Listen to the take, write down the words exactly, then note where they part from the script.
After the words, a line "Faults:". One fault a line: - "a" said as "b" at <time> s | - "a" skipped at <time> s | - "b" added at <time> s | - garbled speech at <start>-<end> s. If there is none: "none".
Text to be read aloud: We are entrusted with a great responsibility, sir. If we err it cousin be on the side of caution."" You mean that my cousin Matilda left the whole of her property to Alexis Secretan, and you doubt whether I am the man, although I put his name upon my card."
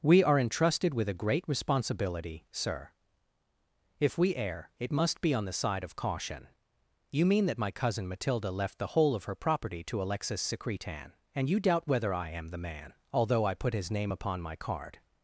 We are entrusted with a great responsibility, sir. If we err it must be on the side of caution."" You mean that my cousin Matilda left the whole of her property to Alexis Secretan, and you doubt whether I am the man, although I put his name upon my card."
Faults:
- "cousin" said as "must" at 4.9 s